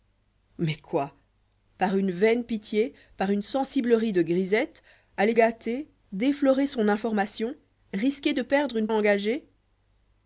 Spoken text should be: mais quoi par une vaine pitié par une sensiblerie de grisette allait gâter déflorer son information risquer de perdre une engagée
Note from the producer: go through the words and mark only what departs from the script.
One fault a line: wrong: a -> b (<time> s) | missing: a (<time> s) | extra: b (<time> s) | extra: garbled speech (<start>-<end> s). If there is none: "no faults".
no faults